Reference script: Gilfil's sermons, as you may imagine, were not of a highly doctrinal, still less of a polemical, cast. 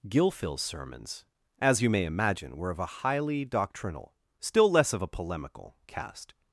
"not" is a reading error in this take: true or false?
true